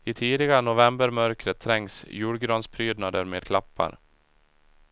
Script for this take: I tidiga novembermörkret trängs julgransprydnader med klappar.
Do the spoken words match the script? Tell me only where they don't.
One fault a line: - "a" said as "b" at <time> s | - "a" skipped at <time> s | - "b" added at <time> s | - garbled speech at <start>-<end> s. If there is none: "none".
none